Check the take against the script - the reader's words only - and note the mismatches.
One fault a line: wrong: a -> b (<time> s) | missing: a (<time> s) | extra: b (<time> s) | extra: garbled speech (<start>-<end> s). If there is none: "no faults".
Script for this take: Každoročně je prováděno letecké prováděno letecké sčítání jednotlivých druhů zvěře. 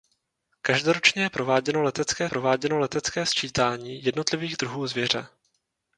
no faults